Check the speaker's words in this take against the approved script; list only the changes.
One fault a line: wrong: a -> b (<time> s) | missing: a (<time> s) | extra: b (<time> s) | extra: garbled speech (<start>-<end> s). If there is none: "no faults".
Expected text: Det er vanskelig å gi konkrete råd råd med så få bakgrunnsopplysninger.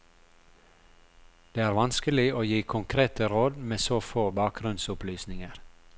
missing: råd (3.6 s)